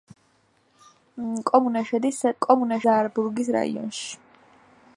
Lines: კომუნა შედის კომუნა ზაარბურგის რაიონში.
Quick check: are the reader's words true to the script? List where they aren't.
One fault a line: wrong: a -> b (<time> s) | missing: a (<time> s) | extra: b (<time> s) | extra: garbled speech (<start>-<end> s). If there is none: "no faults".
no faults